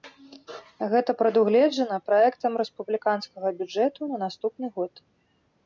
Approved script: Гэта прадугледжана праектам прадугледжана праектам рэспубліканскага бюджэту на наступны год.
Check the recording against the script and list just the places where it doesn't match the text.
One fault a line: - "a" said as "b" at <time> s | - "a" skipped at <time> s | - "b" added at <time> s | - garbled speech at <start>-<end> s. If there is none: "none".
- "прадугледжана праектам" skipped at 2.6 s